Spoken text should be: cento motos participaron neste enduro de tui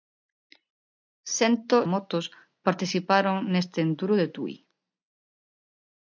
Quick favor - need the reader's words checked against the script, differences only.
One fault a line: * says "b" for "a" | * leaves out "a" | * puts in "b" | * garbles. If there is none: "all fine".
all fine